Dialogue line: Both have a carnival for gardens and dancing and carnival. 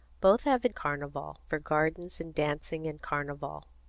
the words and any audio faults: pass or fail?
pass